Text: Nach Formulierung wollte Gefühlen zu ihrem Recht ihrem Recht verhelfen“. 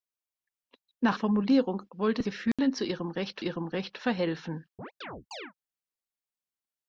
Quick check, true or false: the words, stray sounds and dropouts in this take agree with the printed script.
false